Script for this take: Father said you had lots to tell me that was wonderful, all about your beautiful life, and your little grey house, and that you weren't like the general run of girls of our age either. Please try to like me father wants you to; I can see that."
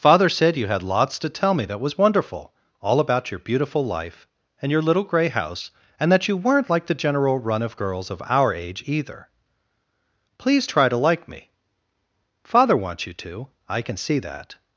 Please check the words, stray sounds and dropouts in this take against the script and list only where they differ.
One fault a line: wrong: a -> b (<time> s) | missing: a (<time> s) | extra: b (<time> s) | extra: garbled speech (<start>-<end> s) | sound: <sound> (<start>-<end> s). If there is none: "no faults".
no faults